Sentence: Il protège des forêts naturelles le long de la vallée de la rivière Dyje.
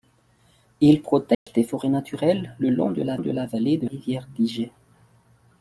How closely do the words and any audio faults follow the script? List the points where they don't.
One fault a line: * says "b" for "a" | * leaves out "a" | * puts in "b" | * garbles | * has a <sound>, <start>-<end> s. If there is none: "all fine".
* has a dropout, 1.3-1.5 s
* puts in "de la"
* leaves out "la"